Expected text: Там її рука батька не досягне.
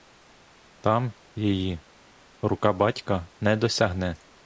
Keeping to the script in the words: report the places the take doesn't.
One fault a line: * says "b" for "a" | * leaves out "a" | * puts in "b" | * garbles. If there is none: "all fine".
all fine